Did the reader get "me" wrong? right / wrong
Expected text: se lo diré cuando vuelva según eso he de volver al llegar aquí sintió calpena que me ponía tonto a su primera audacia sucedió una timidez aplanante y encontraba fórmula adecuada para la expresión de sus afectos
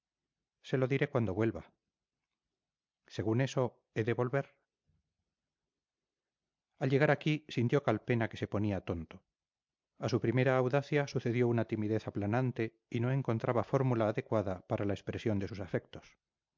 wrong